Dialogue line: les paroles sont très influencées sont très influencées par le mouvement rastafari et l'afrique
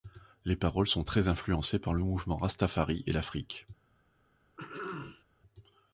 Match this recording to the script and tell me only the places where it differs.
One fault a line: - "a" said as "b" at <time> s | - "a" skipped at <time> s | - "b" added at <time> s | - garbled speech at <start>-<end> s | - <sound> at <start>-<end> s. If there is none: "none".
- "sont très influencées" skipped at 1.8 s
- throat clearing at 4.6-5.2 s